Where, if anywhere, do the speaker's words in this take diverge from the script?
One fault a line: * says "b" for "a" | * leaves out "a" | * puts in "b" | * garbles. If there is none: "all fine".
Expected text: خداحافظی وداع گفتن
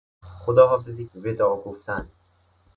all fine